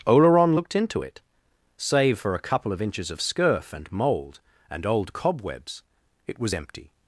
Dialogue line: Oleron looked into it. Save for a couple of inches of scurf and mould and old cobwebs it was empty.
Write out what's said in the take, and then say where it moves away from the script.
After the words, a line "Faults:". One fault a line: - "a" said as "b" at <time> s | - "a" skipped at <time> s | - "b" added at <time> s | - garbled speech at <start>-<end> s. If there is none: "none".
Oleron looked into it. Save for a couple of inches of scurf and mould and old cobwebs it was empty.
Faults:
none